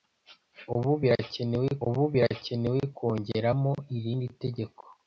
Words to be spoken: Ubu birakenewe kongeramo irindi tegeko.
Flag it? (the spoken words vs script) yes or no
yes